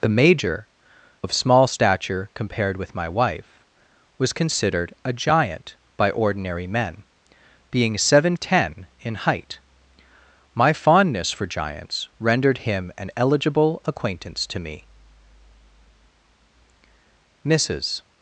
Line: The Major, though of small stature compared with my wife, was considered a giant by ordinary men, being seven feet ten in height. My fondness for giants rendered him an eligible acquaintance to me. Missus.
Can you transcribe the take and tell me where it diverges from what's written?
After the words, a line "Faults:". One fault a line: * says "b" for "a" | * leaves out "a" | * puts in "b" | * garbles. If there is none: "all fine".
The Major, of small stature compared with my wife, was considered a giant by ordinary men, being seven ten in height. My fondness for giants rendered him an eligible acquaintance to me. Missus.
Faults:
* leaves out "though"
* leaves out "feet"